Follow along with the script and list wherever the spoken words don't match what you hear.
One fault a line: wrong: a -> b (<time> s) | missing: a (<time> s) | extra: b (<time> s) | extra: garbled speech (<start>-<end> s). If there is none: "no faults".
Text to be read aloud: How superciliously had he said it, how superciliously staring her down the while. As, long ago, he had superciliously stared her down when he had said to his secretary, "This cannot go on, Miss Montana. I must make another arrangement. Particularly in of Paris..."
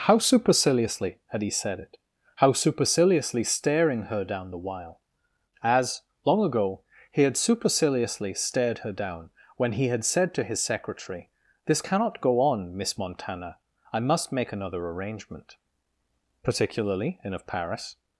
no faults